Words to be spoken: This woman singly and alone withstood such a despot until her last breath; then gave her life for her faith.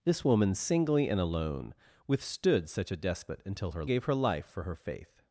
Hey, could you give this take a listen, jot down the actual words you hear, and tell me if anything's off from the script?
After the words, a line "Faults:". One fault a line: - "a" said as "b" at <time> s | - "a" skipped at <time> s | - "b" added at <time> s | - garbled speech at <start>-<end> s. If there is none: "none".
This woman singly and alone withstood such a despot until her gave her life for her faith.
Faults:
- "last breath then" skipped at 3.9 s